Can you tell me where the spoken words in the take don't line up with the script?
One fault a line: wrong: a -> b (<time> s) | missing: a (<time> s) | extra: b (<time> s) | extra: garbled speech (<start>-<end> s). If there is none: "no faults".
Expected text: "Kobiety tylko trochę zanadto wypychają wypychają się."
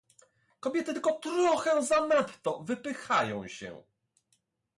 missing: wypychają (3.5 s)